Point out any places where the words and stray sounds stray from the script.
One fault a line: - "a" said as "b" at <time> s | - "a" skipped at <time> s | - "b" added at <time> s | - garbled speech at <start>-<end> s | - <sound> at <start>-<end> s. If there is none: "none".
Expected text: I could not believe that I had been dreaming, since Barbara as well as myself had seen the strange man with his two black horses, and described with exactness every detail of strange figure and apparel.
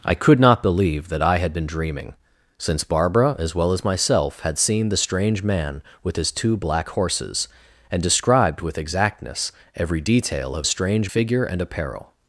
none